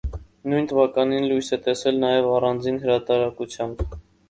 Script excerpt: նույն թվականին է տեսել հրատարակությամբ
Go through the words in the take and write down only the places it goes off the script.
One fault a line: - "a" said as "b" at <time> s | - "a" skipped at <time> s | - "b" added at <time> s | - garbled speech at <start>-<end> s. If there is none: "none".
- "լույս" added at 1.3 s
- "նաև առանձին" added at 2.0 s